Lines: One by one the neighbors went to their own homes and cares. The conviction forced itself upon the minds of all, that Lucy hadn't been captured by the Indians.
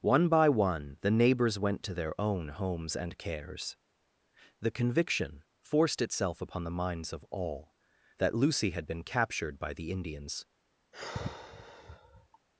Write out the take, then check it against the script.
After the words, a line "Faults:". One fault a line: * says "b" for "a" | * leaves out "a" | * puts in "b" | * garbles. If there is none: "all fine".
One by one the neighbors went to their own homes and cares. The conviction forced itself upon the minds of all, that Lucy had been captured by the Indians.
Faults:
* says "had" for "hadn't"